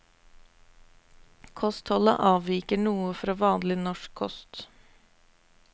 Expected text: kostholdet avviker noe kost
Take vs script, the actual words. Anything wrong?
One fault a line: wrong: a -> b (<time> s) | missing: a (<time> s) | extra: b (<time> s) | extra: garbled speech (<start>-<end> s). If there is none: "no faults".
extra: fra vanlig norsk (3.2 s)